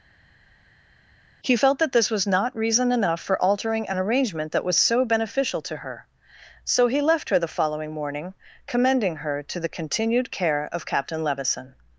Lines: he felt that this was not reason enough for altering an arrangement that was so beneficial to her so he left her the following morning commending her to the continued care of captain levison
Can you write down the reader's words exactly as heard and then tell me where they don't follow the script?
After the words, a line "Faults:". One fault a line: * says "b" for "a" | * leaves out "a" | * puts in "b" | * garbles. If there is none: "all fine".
he felt that this was not reason enough for altering an arrangement that was so beneficial to her so he left her the following morning commending her to the continued care of captain levison
Faults:
all fine